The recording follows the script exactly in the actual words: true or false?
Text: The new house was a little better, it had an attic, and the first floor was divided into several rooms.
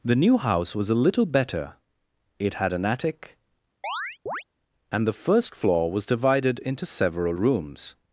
true